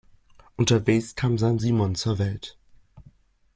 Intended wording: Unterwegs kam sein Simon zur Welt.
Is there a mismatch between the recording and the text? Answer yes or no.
no